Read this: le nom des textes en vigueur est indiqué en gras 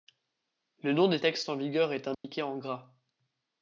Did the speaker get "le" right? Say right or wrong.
right